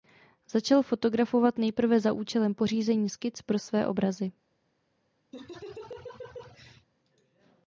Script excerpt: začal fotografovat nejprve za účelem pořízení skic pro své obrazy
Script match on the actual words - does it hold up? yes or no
yes